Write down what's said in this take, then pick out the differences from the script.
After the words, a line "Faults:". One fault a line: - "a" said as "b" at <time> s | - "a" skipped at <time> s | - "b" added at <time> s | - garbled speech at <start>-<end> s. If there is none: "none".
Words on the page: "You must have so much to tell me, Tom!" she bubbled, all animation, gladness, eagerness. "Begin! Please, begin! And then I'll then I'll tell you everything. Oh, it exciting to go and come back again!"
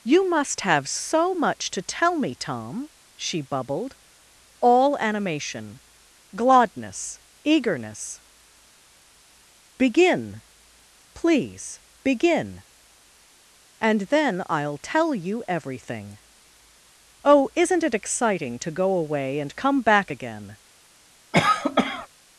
"You must have so much to tell me, Tom!" she bubbled, all animation, gladness, eagerness. "Begin! Please, begin! And then I'll tell you everything. Oh, isn't it exciting to go away and come back again!"
Faults:
- "then I'll" skipped at 14.8 s
- "isn't" added at 17.5 s
- "away" added at 18.9 s